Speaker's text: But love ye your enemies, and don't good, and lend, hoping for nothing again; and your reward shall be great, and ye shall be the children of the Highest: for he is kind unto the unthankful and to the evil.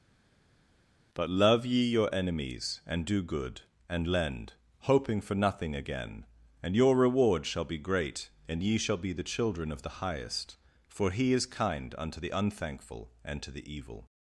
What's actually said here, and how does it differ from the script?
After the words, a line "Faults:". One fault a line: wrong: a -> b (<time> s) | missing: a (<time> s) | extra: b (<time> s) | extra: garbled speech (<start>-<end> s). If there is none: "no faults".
But love ye your enemies, and do good, and lend, hoping for nothing again; and your reward shall be great, and ye shall be the children of the Highest: for he is kind unto the unthankful and to the evil.
Faults:
wrong: don't -> do (3.0 s)